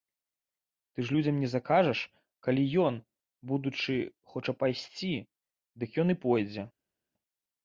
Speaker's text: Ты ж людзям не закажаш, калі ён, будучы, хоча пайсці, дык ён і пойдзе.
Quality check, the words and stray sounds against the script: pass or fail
pass